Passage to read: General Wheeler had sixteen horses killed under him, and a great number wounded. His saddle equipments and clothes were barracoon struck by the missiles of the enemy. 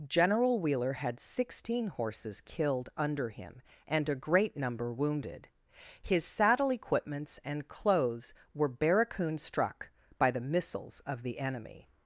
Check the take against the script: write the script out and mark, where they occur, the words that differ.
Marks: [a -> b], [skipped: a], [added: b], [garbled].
General Wheeler had sixteen horses killed under him, and a great number wounded. His saddle equipments and clothes were barracoon struck by the missiles of the enemy.